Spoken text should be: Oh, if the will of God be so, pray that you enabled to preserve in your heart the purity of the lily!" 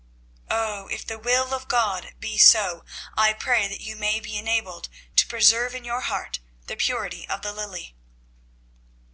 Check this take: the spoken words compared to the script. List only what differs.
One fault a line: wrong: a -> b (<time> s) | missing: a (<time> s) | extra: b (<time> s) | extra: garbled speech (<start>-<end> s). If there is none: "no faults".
extra: I (3.1 s)
extra: may be (4.0 s)